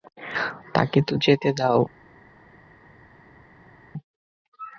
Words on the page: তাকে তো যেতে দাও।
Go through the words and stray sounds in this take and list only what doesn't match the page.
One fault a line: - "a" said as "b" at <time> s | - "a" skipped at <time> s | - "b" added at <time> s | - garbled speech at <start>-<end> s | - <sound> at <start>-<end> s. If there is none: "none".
none